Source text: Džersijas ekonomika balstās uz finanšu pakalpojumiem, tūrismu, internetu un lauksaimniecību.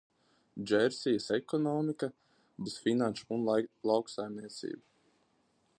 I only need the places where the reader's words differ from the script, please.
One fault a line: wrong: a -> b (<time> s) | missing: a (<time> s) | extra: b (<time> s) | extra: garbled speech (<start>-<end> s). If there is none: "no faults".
missing: balstās (2.1 s)
missing: pakalpojumiem tūrismu internetu (3.3 s)